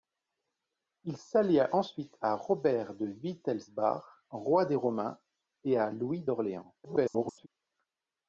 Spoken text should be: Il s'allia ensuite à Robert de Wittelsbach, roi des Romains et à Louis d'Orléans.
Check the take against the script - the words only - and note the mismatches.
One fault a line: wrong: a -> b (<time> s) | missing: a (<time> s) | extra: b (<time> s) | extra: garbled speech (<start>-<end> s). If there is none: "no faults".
extra: garbled speech (6.8-7.5 s)